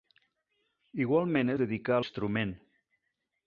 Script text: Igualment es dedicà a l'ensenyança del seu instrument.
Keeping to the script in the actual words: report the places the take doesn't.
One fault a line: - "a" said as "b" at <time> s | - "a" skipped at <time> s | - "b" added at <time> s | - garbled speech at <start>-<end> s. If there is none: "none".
- "es" skipped at 1.5 s
- "l'ensenyança del seu" skipped at 2.0 s